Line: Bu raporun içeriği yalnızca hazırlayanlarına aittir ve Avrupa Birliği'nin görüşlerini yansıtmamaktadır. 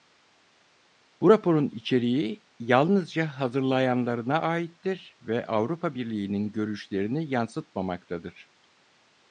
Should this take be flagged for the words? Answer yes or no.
no